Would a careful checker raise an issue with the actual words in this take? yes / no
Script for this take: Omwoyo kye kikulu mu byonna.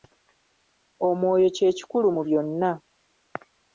no